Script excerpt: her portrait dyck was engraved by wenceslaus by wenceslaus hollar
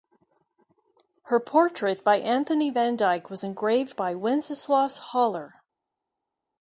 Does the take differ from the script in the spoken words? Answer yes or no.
yes